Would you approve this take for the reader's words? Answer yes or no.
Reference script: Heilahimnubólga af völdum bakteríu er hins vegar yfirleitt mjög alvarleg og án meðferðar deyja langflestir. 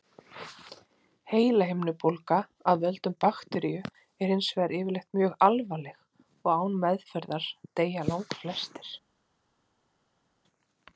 yes